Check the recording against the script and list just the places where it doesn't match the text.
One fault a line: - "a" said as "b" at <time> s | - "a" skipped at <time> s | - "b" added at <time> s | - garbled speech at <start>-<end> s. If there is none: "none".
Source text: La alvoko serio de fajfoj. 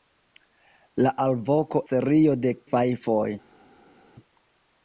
none